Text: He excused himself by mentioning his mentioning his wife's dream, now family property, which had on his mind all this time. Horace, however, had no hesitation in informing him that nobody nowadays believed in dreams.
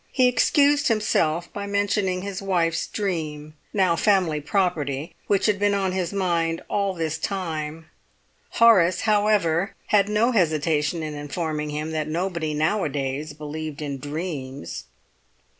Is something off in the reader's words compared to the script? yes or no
yes